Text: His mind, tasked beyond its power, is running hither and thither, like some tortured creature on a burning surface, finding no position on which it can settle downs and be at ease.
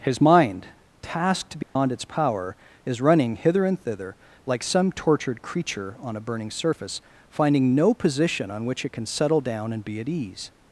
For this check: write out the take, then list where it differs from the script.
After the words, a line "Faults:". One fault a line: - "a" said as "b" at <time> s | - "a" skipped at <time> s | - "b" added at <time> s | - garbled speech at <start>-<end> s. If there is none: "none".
His mind, tasked beyond its power, is running hither and thither, like some tortured creature on a burning surface, finding no position on which it can settle down and be at ease.
Faults:
- "downs" said as "down" at 9.4 s